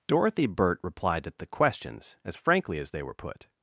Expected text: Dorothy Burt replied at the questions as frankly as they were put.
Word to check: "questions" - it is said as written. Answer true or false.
true